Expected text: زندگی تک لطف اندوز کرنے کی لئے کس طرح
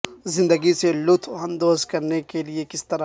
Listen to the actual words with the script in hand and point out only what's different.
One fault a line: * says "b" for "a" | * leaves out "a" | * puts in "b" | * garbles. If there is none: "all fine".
* says "سے" for "تک"
* says "کے" for "کی"